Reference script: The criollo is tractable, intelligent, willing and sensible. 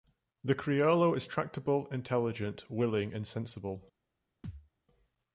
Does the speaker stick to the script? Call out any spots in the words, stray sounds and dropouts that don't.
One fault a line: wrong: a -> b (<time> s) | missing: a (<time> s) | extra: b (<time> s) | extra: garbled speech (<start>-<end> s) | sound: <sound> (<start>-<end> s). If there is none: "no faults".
sound: thud (4.4-4.7 s)